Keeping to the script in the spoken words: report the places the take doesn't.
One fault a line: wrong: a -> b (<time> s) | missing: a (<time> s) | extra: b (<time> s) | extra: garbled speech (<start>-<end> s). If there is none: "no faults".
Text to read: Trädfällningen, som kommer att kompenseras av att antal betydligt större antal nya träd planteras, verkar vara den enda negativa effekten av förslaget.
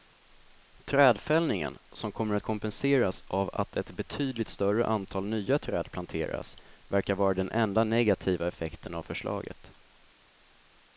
wrong: antal -> ett (3.8 s)